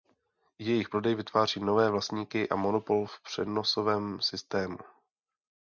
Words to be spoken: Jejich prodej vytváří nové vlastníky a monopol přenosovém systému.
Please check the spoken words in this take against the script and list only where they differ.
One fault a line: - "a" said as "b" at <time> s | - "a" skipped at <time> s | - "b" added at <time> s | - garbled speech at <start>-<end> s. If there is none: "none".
- "v" added at 3.0 s